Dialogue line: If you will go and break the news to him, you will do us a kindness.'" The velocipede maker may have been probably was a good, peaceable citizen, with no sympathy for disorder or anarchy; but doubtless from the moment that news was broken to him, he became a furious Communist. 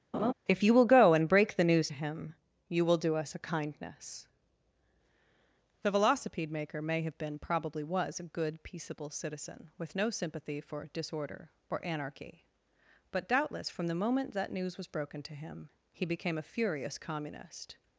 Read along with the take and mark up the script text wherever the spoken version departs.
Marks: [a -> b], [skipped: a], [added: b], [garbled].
If you will go and break the news [skipped: to] him, you will do us a kindness.'" The velocipede maker may have been probably was a good, peaceable citizen, with no sympathy for disorder or anarchy; but doubtless from the moment that news was broken to him, he became a furious Communist.